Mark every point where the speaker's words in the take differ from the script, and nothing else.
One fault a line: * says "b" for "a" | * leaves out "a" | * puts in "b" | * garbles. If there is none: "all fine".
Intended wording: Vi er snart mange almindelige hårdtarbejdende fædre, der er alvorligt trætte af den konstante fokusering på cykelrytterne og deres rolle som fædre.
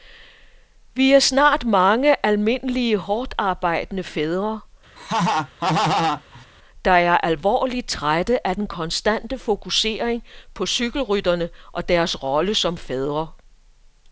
all fine